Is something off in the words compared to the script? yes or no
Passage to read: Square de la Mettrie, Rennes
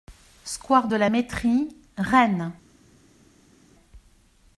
no